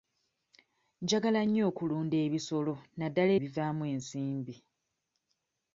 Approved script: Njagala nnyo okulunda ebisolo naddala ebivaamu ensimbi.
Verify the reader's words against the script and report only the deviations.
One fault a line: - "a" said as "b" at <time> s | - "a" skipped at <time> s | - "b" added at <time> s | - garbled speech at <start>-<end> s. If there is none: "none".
none